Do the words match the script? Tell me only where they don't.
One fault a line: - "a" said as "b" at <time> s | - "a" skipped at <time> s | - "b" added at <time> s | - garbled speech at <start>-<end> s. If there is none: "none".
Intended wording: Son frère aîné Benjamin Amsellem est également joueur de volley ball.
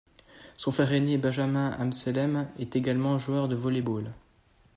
none